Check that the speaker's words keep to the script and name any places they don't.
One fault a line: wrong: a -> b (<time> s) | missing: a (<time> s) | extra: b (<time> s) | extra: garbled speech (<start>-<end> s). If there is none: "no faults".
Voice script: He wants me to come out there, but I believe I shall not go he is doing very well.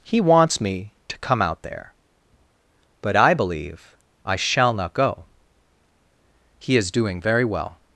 no faults